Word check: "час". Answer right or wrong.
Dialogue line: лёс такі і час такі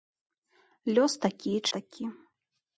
wrong